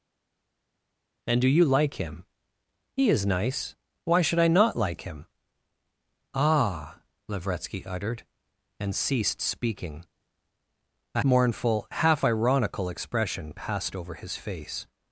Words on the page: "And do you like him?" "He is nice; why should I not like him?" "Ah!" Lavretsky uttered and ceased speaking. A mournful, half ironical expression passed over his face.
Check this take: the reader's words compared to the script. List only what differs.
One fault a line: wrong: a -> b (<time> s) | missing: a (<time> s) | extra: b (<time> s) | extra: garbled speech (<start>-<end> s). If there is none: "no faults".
no faults